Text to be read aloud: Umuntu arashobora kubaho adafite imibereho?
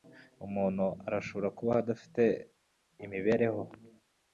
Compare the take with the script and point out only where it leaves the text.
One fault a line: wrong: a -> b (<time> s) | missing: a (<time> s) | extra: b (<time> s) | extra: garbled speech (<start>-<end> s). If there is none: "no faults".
no faults